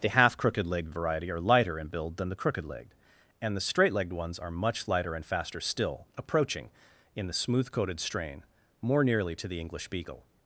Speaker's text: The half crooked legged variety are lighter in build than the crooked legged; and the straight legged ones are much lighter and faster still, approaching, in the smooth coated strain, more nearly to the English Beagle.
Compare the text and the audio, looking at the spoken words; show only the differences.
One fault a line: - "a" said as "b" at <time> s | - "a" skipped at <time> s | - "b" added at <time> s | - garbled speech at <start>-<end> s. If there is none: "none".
none